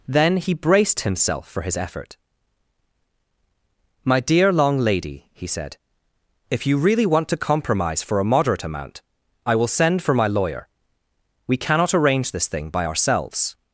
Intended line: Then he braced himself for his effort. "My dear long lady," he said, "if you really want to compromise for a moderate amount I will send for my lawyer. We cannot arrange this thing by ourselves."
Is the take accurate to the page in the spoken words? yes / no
yes